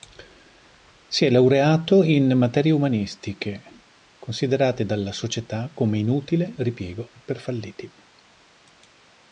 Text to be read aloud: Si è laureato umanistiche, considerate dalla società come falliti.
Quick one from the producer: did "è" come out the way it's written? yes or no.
yes